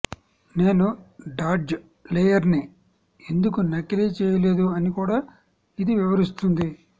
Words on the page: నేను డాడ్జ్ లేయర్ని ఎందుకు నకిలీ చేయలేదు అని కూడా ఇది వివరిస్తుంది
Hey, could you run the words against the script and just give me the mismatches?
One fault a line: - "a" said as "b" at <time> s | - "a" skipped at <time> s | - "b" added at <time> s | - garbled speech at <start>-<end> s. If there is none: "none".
none